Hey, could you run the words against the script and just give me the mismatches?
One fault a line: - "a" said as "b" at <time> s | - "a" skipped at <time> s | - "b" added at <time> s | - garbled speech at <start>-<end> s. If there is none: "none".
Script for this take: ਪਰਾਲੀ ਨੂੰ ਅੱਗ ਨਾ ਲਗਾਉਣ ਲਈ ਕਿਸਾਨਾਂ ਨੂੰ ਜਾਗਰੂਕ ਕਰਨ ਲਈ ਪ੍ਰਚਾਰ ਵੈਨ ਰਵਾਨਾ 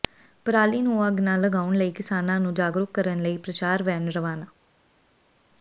none